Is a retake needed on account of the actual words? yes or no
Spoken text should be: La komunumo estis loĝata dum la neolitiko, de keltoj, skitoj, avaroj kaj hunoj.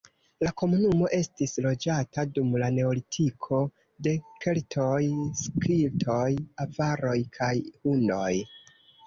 no